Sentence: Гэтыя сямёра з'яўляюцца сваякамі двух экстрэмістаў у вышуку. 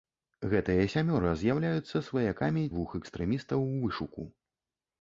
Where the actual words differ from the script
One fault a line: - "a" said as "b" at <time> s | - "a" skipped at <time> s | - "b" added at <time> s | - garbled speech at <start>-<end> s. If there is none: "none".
none